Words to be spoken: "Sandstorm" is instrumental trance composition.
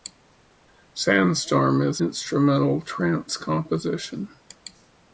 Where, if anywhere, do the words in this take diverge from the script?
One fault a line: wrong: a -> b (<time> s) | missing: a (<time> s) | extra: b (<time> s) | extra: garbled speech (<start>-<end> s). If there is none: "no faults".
no faults